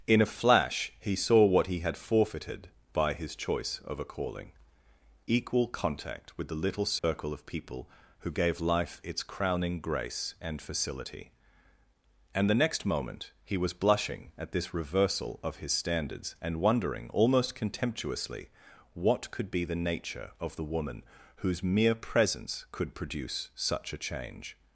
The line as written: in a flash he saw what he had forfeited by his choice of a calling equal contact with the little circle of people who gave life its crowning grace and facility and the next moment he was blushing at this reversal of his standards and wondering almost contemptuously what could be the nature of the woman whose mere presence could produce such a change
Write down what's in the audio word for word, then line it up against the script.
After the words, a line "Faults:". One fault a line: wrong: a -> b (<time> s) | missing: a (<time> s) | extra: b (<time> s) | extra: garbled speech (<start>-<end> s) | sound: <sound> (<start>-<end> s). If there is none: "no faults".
in a flash he saw what he had forfeited by his choice of a calling equal contact with the little circle of people who gave life its crowning grace and facility and the next moment he was blushing at this reversal of his standards and wondering almost contemptuously what could be the nature of the woman whose mere presence could produce such a change
Faults:
sound: dropout (7.0-7.0 s)